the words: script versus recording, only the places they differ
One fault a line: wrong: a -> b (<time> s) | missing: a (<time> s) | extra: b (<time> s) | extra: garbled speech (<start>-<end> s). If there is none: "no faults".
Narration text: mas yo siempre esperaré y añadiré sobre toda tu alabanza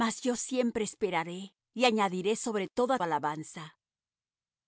missing: tu (3.0 s)